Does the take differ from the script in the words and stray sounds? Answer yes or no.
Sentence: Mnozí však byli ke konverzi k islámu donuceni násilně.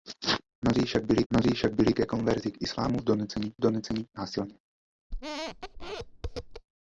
yes